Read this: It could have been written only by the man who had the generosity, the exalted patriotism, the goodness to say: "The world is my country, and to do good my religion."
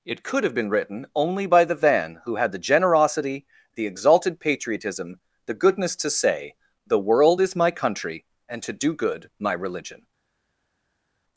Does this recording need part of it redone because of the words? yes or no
yes